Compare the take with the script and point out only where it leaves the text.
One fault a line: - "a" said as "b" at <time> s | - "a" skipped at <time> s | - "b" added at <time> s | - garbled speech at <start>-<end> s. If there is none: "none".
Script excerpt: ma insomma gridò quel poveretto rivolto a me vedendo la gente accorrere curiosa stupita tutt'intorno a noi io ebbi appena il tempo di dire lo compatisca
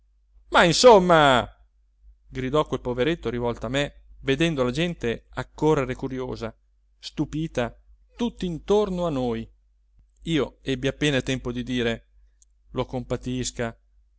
none